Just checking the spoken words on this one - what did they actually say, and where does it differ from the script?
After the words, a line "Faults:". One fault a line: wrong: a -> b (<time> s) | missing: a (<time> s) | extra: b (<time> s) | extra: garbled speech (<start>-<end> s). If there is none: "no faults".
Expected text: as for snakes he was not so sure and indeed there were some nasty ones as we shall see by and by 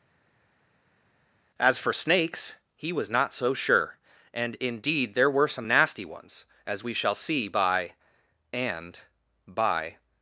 as for snakes he was not so sure and indeed there were some nasty ones as we shall see by and by
Faults:
no faults